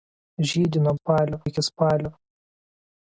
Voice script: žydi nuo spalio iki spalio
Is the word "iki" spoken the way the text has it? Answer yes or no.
yes